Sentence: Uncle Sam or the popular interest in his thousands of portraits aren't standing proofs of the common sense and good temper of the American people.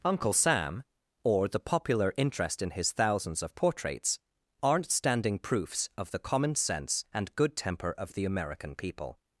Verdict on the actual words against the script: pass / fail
pass